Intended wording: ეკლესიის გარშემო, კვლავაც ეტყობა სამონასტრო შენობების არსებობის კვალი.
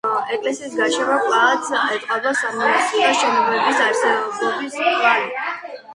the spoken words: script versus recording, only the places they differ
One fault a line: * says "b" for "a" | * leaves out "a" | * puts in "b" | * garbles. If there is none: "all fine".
all fine